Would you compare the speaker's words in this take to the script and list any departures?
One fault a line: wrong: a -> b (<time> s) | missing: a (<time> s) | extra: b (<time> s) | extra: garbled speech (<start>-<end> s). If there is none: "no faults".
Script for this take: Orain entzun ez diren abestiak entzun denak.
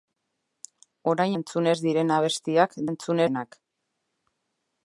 no faults